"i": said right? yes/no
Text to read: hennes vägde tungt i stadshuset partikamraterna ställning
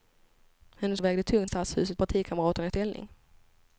yes